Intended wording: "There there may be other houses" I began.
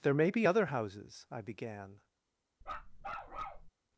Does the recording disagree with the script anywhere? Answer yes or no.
yes